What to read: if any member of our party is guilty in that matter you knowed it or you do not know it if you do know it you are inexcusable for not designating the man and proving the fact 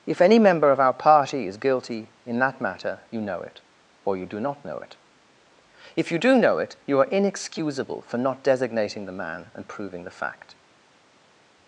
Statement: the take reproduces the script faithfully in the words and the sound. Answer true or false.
false